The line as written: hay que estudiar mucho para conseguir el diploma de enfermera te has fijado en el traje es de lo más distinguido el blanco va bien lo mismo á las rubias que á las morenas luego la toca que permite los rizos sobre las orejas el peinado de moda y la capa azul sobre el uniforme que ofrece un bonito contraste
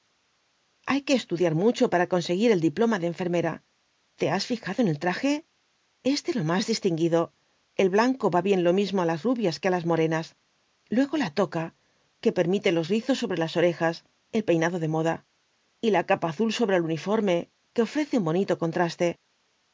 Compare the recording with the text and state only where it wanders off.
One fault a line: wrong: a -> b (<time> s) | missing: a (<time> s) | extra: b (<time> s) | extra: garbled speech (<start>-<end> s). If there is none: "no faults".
no faults